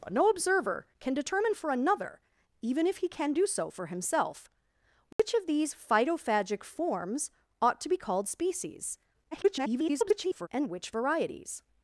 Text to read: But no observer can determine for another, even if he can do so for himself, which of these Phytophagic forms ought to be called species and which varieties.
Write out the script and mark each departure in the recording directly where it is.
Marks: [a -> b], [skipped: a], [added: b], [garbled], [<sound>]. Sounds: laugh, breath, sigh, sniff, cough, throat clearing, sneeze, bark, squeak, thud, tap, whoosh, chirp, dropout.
But no observer can determine for another, even if he can do so for himself, which [dropout] of these Phytophagic forms ought to be called species [garbled] and which varieties.